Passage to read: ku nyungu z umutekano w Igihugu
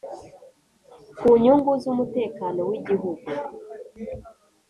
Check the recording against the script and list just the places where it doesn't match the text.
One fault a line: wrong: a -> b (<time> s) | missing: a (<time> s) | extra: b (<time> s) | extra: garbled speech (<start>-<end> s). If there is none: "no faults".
no faults